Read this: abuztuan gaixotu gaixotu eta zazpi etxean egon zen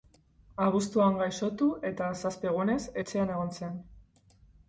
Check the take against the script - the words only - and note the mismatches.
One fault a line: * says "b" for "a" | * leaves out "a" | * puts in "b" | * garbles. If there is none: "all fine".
* leaves out "gaixotu"
* puts in "egunez"